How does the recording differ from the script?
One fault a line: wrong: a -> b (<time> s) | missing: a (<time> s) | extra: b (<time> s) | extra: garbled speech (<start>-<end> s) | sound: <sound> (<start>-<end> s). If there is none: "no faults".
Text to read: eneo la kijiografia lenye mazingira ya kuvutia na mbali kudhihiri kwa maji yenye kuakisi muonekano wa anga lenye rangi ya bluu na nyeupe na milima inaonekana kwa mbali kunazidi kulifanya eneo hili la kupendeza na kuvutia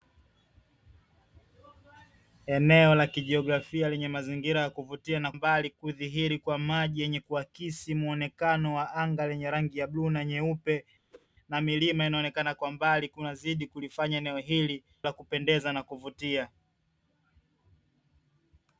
sound: whoosh (11.1-11.3 s)